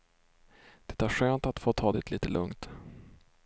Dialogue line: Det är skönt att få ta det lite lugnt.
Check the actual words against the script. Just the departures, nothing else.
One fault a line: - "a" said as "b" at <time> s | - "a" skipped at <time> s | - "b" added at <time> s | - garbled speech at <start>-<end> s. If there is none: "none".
none